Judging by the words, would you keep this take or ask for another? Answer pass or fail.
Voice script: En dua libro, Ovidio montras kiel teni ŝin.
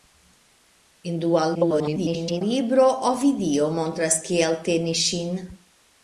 fail